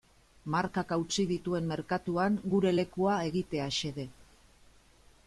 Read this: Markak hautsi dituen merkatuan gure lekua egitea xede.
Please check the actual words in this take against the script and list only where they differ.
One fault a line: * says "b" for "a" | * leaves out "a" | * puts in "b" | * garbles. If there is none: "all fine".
all fine